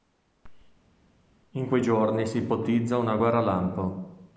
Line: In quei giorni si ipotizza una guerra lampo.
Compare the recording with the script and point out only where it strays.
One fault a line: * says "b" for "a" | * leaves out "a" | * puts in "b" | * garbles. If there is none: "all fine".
all fine